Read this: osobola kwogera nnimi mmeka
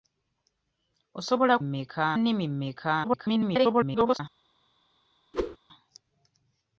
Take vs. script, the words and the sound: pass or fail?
fail